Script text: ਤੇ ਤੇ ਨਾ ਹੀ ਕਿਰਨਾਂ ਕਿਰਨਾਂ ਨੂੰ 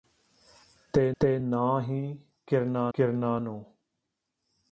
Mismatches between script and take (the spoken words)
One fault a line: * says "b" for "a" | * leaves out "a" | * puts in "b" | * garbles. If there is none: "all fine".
all fine